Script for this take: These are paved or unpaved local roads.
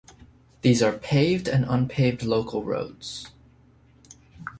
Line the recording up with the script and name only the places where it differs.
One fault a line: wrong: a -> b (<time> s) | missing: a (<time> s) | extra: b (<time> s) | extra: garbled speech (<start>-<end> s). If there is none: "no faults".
wrong: or -> and (1.5 s)